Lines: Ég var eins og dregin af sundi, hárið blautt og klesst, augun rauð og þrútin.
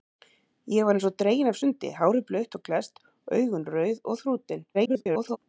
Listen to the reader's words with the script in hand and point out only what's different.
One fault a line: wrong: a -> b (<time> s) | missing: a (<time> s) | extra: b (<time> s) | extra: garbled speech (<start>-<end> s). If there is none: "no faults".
extra: garbled speech (4.7-5.4 s)